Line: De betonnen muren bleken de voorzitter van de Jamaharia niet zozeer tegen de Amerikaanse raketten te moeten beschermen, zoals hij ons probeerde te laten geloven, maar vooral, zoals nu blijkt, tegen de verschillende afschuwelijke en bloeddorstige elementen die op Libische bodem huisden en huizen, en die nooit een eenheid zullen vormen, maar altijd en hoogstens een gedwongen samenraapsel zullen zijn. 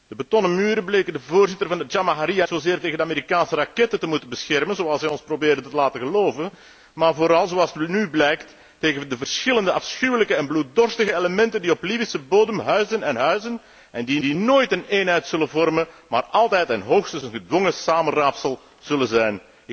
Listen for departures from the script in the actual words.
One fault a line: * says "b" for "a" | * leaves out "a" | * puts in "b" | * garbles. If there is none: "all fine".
* leaves out "niet"
* puts in "die"